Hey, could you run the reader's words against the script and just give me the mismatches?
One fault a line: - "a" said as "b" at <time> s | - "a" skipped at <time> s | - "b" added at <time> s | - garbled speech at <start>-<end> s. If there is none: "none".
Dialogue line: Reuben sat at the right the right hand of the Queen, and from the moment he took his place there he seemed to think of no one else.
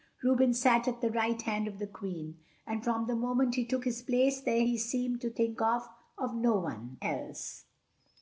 - "the right" skipped at 1.4 s